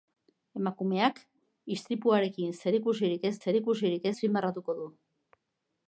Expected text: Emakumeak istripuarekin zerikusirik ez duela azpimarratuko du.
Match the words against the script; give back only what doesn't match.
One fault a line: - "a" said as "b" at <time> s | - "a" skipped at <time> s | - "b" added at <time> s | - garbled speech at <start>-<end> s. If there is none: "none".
- "duela" said as "zerikusirik" at 3.4 s